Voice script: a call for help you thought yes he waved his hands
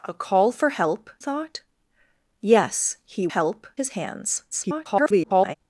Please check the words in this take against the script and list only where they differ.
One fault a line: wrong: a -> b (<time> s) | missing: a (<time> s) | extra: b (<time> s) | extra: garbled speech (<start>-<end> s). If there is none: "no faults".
missing: you (1.1 s)
wrong: waved -> help (3.3 s)
extra: garbled speech (4.5-5.5 s)